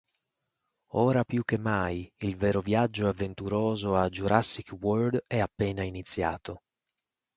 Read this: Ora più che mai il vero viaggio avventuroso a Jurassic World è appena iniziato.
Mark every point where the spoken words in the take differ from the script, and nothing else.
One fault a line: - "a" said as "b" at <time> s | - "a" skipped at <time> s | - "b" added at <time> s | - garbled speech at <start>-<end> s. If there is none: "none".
none